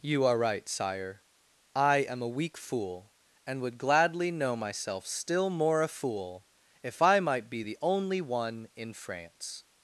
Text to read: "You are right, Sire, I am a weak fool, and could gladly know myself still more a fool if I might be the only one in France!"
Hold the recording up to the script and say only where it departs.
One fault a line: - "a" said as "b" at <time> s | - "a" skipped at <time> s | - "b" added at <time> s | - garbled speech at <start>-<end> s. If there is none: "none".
- "could" said as "would" at 3.6 s